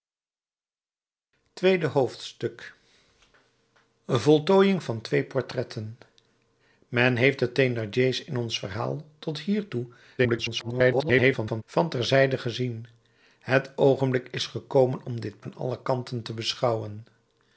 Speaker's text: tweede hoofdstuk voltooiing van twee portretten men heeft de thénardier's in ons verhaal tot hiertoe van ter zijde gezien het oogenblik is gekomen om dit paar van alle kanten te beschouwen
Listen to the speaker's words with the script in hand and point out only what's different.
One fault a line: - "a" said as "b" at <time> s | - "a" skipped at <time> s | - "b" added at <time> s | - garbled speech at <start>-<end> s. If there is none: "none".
- garbled speech at 10.2-11.6 s
- "paar" skipped at 15.4 s